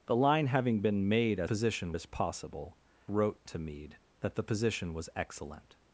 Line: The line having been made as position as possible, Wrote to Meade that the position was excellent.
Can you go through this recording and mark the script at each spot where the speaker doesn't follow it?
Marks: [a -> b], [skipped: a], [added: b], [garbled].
The line having been made as position as possible, Wrote to Meade that the position was excellent.